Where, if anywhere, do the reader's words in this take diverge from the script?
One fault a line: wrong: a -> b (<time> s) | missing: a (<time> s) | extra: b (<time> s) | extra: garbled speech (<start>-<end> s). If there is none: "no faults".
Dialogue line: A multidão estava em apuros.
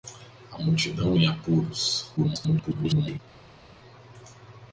missing: estava (1.1 s)
extra: garbled speech (2.2-3.2 s)